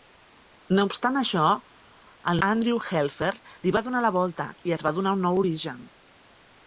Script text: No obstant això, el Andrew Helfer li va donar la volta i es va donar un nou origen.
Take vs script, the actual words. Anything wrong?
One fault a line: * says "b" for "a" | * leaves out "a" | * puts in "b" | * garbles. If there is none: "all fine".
all fine